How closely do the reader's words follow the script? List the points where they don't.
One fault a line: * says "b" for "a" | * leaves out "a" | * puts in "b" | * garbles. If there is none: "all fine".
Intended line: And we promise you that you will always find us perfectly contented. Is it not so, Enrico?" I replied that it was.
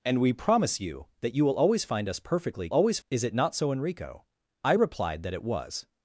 * says "always" for "contented"